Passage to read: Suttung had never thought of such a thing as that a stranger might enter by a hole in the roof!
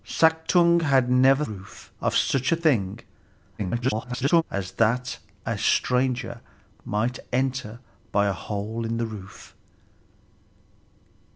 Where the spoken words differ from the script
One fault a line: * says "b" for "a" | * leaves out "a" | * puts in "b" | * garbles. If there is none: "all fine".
* says "roof" for "thought"
* garbles